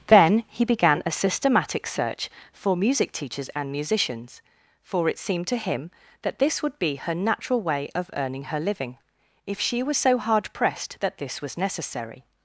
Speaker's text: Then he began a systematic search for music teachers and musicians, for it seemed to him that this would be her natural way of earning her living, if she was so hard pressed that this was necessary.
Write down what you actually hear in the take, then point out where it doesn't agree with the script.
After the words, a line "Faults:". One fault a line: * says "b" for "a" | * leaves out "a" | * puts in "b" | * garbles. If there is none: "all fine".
Then he began a systematic search for music teachers and musicians, for it seemed to him that this would be her natural way of earning her living, if she was so hard pressed that this was necessary.
Faults:
all fine